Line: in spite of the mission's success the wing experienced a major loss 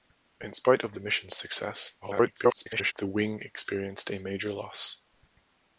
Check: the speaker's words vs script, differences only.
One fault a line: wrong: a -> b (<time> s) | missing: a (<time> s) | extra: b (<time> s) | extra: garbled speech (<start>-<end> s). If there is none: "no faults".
extra: garbled speech (2.0-2.9 s)